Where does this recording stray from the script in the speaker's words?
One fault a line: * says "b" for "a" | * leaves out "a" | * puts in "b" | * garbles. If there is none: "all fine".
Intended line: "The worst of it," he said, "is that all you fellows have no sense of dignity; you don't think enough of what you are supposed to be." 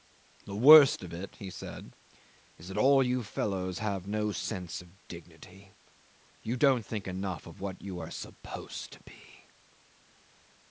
all fine